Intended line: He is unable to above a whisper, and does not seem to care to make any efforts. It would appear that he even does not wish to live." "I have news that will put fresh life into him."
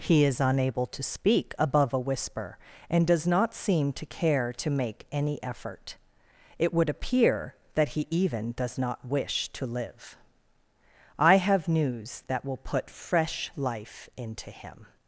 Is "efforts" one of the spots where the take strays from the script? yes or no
yes